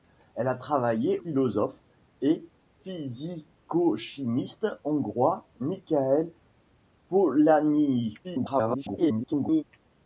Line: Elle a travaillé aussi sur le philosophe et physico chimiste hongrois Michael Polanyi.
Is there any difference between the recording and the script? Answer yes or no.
yes